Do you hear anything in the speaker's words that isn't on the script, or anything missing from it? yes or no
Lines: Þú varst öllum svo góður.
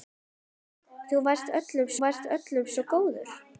yes